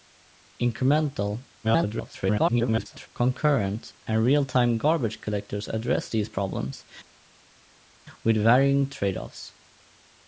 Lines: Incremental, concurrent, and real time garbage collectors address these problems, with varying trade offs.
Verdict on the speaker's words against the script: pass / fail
fail